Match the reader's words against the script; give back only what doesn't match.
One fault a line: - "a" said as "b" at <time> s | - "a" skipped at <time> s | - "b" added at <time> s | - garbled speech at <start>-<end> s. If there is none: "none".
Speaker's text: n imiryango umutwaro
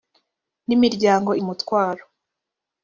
none